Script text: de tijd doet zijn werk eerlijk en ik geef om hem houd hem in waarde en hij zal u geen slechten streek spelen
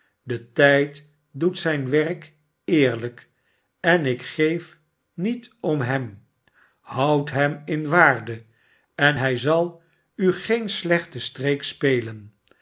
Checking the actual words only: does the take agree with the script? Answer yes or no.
no